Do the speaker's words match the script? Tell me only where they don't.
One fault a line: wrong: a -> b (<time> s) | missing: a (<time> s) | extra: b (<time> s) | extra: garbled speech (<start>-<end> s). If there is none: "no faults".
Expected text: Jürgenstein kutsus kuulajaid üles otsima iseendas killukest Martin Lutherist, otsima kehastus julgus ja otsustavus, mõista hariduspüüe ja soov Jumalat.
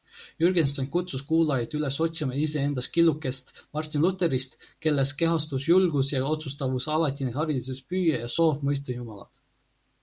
wrong: otsima -> kelles (4.9 s)
wrong: mõista -> alatine (7.0 s)
extra: mõista (8.7 s)